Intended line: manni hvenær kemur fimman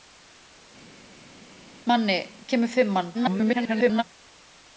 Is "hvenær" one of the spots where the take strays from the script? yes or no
yes